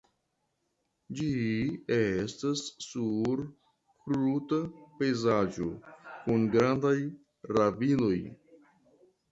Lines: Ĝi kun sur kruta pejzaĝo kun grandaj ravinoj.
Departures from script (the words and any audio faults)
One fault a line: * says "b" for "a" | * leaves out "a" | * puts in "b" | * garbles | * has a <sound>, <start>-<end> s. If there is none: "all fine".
* says "estas" for "kun"